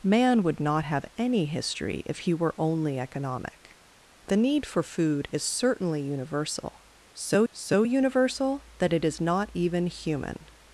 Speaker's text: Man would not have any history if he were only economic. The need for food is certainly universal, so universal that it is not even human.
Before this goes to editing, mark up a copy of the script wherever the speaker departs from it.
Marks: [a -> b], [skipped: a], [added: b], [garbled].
Man would not have any history if he were only economic. The need for food is certainly universal, so [added: so] universal that it is not even human.